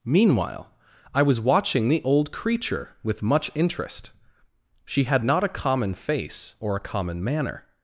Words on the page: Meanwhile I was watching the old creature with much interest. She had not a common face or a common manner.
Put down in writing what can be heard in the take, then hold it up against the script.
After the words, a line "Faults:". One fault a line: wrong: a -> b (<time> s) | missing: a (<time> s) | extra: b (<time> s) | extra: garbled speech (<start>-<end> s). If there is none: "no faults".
Meanwhile I was watching the old creature with much interest. She had not a common face or a common manner.
Faults:
no faults